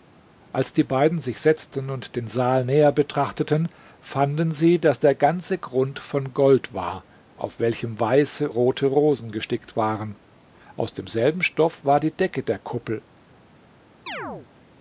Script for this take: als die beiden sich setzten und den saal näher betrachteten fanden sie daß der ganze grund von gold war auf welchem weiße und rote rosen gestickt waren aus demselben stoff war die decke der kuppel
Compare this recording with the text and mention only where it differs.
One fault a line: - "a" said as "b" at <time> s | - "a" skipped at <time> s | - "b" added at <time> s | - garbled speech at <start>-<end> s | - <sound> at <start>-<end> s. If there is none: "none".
- "und" skipped at 8.5 s
- chirp at 14.1-14.5 s